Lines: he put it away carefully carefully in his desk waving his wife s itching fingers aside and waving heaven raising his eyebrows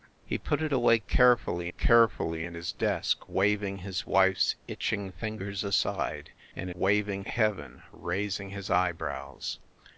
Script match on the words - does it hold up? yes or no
yes